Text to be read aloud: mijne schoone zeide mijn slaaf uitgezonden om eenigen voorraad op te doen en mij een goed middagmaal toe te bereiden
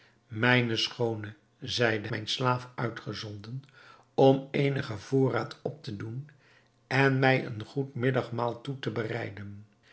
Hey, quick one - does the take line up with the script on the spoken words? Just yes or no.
yes